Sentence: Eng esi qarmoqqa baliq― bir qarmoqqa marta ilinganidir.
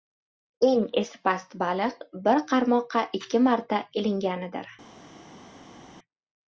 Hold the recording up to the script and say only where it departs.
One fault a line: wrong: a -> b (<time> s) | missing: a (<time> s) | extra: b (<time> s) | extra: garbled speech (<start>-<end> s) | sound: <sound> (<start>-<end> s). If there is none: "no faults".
wrong: qarmoqqa -> past (1.3 s)
extra: ikki (3.2 s)